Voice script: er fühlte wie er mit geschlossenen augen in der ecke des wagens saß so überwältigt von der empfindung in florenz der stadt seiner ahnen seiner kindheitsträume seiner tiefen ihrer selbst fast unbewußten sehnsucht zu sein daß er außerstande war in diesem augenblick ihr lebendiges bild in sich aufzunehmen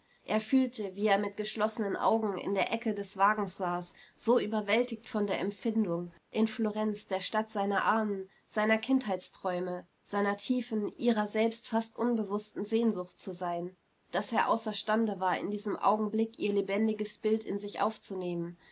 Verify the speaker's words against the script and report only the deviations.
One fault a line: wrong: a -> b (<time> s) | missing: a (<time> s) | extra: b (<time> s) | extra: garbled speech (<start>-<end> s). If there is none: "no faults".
no faults